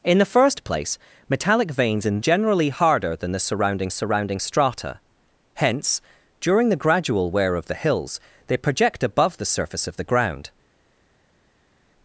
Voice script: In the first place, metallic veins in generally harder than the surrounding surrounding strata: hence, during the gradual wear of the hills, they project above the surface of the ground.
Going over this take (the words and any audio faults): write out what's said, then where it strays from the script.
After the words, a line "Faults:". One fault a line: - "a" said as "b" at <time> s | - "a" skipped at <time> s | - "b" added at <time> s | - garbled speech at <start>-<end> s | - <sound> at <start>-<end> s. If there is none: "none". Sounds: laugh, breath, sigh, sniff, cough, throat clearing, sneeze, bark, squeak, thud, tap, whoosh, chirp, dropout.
In the first place, metallic veins in generally harder than the surrounding surrounding strata: hence, during the gradual wear of the hills, they project above the surface of the ground.
Faults:
none